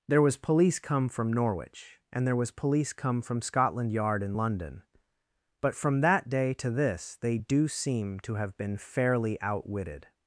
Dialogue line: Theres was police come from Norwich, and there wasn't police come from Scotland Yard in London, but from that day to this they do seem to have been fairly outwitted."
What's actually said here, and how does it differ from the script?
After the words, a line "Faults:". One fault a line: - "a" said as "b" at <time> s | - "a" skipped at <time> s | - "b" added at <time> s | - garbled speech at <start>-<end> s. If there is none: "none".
There was police come from Norwich, and there was police come from Scotland Yard in London, but from that day to this they do seem to have been fairly outwitted."
Faults:
- "Theres" said as "There" at 0.1 s
- "wasn't" said as "was" at 2.4 s